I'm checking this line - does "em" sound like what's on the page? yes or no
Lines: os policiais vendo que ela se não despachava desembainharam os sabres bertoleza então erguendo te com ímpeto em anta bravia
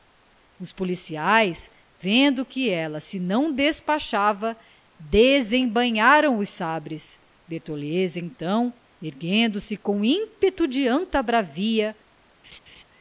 no